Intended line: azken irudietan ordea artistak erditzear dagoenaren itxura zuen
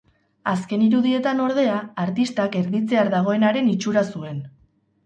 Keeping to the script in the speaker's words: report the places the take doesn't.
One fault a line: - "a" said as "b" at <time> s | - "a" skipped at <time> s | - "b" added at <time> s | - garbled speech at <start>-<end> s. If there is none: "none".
none